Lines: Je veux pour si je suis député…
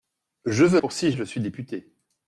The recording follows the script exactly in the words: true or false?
true